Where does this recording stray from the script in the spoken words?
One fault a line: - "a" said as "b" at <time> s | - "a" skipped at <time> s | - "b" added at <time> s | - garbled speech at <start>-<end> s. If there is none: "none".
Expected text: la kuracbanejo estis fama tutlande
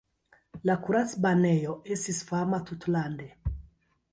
none